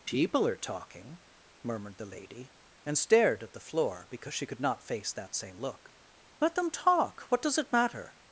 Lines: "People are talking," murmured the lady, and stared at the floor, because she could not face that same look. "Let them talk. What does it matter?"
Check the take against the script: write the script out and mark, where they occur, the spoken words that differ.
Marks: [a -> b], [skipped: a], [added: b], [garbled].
"People are talking," murmured the lady, and stared at the floor, because she could not face that same look. "Let them talk. What does it matter?"